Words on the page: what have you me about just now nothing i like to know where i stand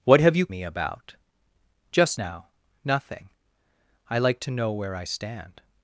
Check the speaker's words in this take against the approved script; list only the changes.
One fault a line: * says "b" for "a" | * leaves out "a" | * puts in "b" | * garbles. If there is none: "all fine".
all fine